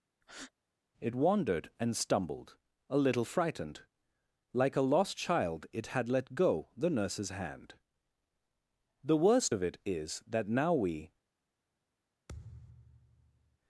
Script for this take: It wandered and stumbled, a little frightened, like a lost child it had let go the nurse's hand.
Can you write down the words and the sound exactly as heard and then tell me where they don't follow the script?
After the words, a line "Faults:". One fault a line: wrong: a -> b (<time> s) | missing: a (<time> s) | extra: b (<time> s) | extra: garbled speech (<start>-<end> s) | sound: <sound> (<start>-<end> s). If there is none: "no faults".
It wandered and stumbled, a little frightened, like a lost child it had let go the nurse's hand. "The worst of it is that now we
Faults:
sound: breath (0.2-0.5 s)
extra: The worst of it is that now we (9.0 s)
sound: thud (12.3-13.6 s)